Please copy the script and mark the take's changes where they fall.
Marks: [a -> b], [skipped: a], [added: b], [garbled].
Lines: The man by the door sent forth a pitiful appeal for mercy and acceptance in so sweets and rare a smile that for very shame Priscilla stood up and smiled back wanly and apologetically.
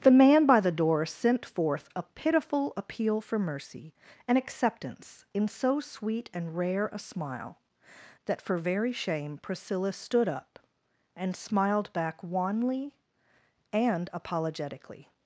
The man by the door sent forth a pitiful appeal for mercy and acceptance in so [sweets -> sweet] and rare a smile that for very shame Priscilla stood up and smiled back wanly and apologetically.